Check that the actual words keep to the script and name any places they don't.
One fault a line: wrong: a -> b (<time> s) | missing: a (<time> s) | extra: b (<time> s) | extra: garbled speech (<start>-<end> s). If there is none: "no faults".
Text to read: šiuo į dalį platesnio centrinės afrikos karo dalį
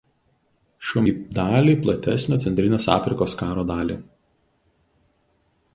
no faults